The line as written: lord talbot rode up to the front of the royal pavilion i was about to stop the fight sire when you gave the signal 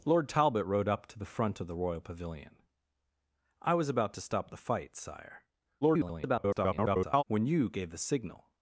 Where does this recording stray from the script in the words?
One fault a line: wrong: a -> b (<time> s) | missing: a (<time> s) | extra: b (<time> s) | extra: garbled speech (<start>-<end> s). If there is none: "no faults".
extra: garbled speech (5.8-7.2 s)